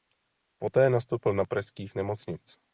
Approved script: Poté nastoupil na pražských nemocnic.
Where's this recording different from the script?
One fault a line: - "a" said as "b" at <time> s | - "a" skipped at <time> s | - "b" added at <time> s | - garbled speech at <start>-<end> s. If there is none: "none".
none